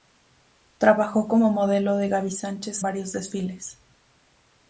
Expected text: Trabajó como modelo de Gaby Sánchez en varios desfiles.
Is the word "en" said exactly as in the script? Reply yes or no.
no